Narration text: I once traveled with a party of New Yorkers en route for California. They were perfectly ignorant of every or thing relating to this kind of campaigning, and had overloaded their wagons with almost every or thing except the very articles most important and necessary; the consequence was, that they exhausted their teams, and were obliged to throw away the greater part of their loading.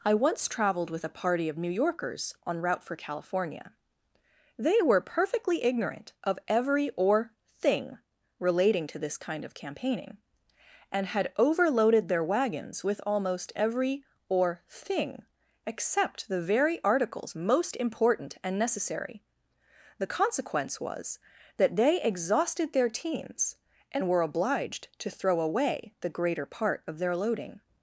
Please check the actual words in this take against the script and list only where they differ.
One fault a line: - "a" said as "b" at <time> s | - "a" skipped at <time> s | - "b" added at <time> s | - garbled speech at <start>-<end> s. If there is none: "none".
none